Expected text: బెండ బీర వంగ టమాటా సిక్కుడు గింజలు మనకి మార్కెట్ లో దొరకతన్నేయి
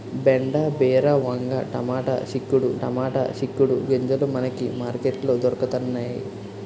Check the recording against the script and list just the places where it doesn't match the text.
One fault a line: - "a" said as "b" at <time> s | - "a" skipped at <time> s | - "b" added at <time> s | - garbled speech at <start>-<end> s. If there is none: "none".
- "టమాటా సిక్కుడు" added at 2.8 s